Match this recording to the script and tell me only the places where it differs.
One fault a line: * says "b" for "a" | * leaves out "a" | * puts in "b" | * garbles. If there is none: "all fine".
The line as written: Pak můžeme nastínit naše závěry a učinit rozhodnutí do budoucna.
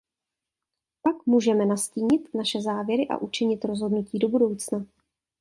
all fine